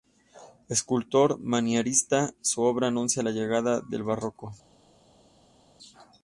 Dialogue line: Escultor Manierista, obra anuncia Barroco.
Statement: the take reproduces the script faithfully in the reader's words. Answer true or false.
false